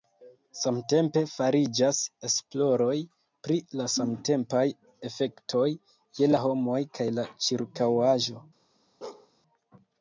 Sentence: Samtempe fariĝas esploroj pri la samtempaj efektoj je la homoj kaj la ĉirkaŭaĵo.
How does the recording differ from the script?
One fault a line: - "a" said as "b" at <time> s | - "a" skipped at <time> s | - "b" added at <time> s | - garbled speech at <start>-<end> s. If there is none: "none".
none